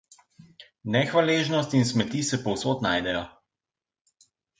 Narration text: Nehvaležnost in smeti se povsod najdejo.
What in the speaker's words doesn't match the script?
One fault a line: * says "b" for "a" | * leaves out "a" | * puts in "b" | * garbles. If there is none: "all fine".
all fine